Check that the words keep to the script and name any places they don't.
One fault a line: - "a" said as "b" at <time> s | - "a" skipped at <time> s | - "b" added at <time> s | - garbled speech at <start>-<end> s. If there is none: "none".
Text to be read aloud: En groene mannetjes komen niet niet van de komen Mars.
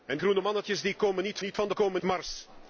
none